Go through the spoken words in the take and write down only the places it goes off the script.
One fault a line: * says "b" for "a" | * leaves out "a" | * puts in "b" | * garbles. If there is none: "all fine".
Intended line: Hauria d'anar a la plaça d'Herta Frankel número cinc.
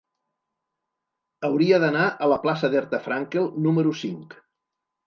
all fine